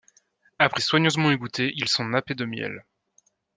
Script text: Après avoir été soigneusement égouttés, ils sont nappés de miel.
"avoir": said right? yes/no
no